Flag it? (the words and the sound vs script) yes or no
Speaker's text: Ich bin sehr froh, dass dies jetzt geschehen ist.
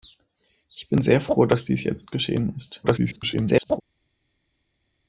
yes